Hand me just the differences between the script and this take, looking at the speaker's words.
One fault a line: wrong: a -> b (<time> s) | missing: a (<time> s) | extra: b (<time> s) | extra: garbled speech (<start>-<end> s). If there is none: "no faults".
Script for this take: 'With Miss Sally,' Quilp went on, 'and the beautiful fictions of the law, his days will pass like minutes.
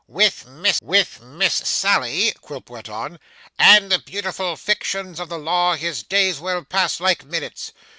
extra: with Miss (0.8 s)